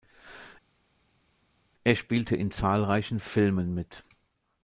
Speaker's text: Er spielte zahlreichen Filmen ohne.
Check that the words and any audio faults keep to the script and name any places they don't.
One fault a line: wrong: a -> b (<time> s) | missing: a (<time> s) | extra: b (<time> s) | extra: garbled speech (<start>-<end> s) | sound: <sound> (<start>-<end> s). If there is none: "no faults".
extra: in (2.4 s)
wrong: ohne -> mit (3.7 s)